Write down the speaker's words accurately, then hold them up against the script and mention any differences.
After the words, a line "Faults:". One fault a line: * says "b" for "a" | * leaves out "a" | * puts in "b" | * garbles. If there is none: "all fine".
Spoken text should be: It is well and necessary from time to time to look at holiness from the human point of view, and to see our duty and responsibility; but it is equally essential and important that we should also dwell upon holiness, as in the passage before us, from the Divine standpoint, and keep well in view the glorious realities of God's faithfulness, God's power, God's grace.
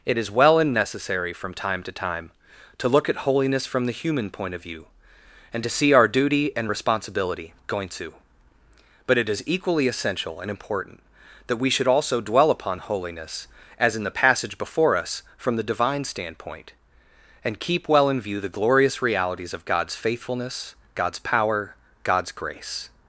It is well and necessary from time to time to look at holiness from the human point of view, and to see our duty and responsibility; going to but it is equally essential and important that we should also dwell upon holiness, as in the passage before us, from the Divine standpoint, and keep well in view the glorious realities of God's faithfulness, God's power, God's grace.
Faults:
* puts in "going to"